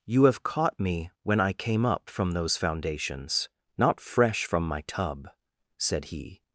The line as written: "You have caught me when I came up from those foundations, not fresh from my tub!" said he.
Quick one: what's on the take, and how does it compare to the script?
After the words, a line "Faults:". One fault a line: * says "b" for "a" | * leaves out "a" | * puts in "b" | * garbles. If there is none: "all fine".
"You have caught me when I came up from those foundations, not fresh from my tub!" said he.
Faults:
all fine